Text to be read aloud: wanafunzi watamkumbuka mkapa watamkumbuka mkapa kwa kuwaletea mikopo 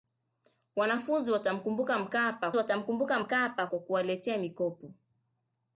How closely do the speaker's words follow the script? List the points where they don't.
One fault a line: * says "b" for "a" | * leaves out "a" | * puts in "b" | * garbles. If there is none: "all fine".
all fine